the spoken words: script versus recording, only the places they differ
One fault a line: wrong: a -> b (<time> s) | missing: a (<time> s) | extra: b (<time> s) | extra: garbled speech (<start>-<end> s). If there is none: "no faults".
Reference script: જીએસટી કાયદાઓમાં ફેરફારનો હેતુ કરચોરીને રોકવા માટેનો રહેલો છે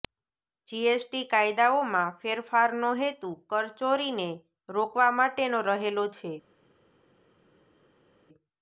no faults